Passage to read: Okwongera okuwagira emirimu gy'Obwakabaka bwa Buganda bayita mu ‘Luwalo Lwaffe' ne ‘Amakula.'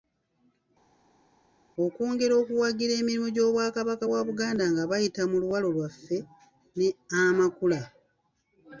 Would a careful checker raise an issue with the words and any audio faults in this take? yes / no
yes